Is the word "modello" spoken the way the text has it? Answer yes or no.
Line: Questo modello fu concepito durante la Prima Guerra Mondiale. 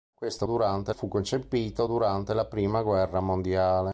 no